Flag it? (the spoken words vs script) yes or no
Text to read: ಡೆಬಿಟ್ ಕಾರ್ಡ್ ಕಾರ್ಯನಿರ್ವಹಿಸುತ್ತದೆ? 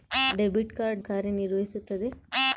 no